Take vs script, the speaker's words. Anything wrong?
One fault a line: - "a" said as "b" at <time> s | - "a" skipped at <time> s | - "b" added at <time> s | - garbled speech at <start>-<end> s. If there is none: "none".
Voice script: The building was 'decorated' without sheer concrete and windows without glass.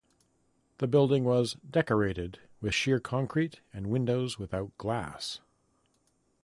- "without" said as "with" at 2.6 s